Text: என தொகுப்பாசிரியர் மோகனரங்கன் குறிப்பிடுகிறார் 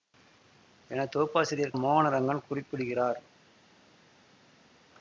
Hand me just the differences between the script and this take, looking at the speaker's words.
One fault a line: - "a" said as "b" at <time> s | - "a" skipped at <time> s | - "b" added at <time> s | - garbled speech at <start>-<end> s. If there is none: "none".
none